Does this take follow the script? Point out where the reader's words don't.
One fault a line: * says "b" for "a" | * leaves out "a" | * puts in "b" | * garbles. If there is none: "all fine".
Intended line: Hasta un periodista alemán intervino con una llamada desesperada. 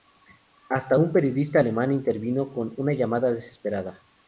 all fine